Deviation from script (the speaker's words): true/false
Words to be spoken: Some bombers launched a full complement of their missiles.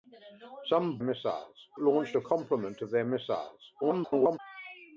true